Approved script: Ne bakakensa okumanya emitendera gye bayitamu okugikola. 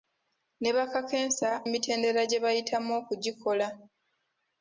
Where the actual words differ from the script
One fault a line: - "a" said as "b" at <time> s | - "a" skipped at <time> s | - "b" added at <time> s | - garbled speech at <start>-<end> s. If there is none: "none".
- "okumanya" skipped at 1.5 s